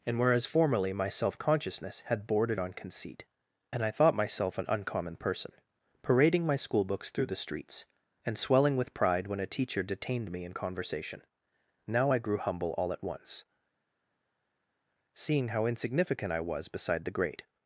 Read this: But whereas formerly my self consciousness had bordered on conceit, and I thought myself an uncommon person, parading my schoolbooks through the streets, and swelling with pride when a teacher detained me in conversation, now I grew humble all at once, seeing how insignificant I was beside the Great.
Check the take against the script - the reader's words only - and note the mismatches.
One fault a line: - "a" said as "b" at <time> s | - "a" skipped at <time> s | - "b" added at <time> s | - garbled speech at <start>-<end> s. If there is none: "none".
- "But" said as "And" at 0.1 s